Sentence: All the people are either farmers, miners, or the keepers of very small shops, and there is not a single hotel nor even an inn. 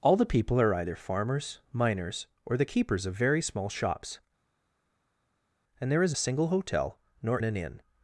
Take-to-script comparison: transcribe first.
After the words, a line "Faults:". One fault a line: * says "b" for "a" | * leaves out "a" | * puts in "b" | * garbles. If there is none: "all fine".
All the people are either farmers, miners, or the keepers of very small shops, and there is a single hotel nor an inn.
Faults:
* leaves out "not"
* leaves out "even"